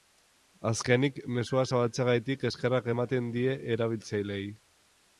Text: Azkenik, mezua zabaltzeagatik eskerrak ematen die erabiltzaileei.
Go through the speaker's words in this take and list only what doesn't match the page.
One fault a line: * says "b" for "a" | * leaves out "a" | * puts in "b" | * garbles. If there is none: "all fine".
all fine